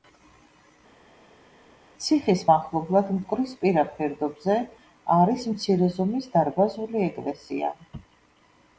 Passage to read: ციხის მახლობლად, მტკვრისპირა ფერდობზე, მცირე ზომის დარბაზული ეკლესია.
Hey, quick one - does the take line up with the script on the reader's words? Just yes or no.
no